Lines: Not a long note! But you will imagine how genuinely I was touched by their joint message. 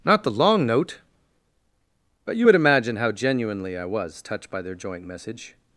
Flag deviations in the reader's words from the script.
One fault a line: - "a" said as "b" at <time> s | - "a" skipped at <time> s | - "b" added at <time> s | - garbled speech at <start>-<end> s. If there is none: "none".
- "a" said as "the" at 0.2 s
- "will" said as "would" at 2.4 s